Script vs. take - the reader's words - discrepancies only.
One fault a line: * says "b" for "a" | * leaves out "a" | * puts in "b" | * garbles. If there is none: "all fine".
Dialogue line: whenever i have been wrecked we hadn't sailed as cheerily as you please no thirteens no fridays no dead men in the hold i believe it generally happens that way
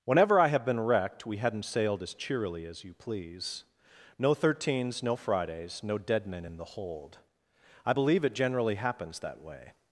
all fine